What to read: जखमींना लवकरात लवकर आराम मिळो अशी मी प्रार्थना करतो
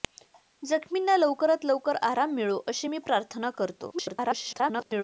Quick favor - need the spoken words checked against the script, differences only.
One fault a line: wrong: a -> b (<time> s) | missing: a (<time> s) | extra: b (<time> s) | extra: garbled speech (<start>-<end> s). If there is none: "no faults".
extra: garbled speech (3.9-5.0 s)